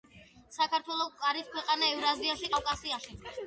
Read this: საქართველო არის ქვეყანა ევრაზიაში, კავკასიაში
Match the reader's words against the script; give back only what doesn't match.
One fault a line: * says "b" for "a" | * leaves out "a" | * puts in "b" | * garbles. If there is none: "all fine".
all fine